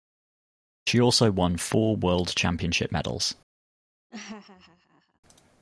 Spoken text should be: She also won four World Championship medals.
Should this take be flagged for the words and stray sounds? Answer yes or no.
yes